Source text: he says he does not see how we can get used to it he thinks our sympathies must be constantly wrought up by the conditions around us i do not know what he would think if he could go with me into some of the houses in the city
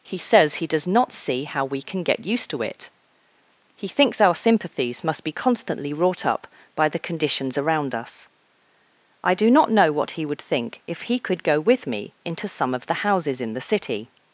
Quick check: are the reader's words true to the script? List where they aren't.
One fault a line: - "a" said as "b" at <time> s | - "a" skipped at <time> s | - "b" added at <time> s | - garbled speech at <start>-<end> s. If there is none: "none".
none